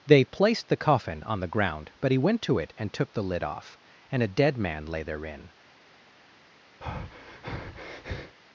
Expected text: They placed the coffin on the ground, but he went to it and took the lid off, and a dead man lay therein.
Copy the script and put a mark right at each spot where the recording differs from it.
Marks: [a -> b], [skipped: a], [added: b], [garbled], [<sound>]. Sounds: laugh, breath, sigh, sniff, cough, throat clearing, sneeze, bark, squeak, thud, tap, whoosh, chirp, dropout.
They placed the coffin on the ground, but he went to it and took the lid off, and a dead man lay therein. [breath]